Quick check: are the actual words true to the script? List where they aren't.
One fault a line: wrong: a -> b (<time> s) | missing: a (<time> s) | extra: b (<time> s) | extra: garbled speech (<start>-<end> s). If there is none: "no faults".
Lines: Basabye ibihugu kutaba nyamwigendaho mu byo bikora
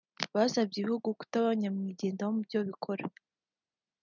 no faults